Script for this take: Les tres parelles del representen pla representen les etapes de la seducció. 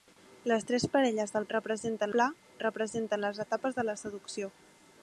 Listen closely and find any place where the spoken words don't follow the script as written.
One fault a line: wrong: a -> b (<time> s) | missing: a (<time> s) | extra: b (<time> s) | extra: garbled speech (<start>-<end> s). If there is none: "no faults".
no faults